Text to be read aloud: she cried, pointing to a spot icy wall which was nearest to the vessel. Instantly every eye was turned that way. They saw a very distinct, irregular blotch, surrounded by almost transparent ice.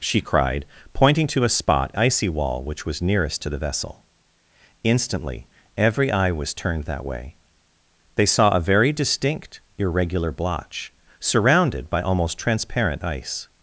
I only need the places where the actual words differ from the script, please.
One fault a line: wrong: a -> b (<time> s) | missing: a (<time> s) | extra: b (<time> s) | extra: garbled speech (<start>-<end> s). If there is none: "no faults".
no faults